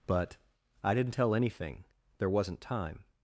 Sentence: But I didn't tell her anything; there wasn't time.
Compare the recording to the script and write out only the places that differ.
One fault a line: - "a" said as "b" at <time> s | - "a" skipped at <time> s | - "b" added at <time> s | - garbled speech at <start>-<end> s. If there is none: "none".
- "her" skipped at 1.4 s